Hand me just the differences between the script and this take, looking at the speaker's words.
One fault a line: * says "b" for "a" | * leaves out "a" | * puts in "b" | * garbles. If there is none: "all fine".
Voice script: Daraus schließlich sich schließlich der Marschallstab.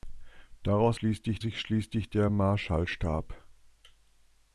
all fine